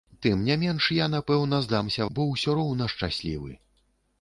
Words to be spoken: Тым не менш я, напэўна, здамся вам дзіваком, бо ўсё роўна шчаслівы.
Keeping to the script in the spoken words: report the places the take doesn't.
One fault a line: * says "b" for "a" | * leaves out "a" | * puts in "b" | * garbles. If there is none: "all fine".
* leaves out "вам дзіваком"